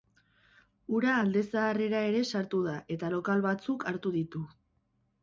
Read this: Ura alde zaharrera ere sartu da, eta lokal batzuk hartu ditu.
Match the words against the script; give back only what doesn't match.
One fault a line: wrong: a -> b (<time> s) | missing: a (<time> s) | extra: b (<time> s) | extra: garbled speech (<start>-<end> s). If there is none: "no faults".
no faults